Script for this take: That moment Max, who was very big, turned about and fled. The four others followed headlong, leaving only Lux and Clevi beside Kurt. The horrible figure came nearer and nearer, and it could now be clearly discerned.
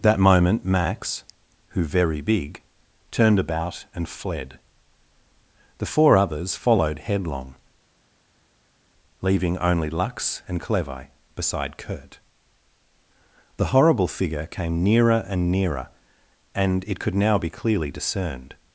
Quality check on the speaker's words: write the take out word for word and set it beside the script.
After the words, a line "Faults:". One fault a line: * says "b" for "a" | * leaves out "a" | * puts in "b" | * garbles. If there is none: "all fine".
That moment Max, who very big, turned about and fled. The four others followed headlong, leaving only Lux and Clevi beside Kurt. The horrible figure came nearer and nearer, and it could now be clearly discerned.
Faults:
* leaves out "was"